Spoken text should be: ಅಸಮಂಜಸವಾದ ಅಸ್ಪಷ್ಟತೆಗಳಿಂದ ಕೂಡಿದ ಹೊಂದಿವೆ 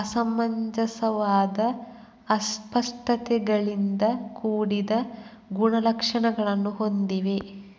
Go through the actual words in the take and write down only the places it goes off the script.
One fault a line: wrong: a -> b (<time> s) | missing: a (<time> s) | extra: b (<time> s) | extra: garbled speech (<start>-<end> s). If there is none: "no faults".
extra: ಗುಣಲಕ್ಷಣಗಳನ್ನು (5.5 s)